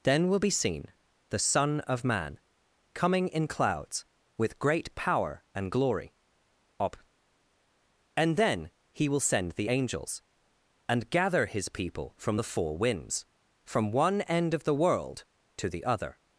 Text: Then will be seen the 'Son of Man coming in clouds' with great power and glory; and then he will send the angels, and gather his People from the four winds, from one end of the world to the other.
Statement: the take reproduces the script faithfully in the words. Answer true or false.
false